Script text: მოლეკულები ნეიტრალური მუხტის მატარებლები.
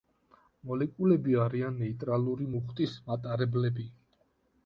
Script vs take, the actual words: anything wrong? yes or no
yes